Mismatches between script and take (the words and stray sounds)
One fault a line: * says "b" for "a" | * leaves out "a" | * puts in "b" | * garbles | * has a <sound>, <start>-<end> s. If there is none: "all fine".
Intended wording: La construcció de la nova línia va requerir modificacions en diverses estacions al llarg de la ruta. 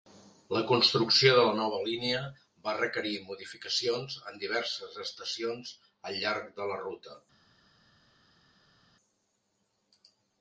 all fine